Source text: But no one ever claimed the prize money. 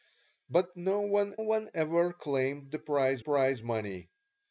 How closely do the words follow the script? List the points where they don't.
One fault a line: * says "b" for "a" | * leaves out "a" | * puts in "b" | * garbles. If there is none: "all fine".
* puts in "one"
* puts in "prize"